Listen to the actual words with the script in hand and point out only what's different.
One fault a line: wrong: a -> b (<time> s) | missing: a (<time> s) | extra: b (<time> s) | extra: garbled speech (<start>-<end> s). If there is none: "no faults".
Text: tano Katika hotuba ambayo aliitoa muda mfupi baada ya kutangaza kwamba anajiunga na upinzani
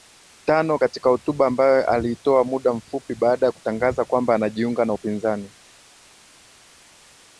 no faults